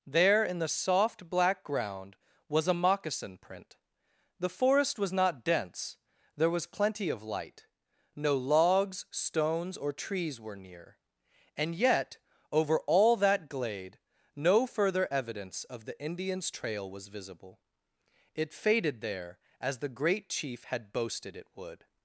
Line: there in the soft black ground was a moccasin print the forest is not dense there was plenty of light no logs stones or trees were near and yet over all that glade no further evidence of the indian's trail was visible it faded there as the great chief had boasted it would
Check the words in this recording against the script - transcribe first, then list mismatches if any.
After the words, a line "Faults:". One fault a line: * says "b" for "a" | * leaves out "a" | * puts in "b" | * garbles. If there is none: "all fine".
there in the soft black ground was a moccasin print the forest was not dense there was plenty of light no logs stones or trees were near and yet over all that glade no further evidence of the indian's trail was visible it faded there as the great chief had boasted it would
Faults:
* says "was" for "is"